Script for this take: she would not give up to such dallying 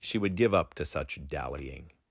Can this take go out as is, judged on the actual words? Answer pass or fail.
fail